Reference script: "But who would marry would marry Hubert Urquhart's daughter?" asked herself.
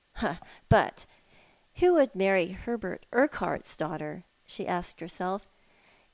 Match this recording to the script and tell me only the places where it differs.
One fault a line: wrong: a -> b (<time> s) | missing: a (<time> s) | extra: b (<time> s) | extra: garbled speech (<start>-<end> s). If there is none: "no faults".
missing: would marry (2.6 s)
extra: she (4.5 s)